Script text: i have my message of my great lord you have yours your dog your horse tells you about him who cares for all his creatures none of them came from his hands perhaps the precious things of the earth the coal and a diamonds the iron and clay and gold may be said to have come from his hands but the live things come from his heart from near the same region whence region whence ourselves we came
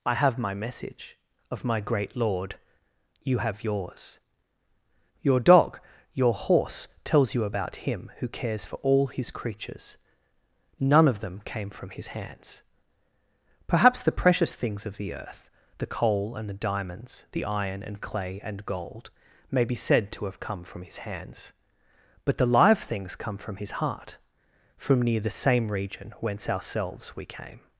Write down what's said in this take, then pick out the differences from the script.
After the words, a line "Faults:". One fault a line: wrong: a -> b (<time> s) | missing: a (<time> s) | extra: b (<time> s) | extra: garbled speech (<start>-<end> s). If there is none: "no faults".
i have my message of my great lord you have yours your dog your horse tells you about him who cares for all his creatures none of them came from his hands perhaps the precious things of the earth the coal and the diamonds the iron and clay and gold may be said to have come from his hands but the live things come from his heart from near the same region whence ourselves we came
Faults:
wrong: a -> the (16.5 s)
missing: region whence (26.5 s)